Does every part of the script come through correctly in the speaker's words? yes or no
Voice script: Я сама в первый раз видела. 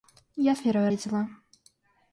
no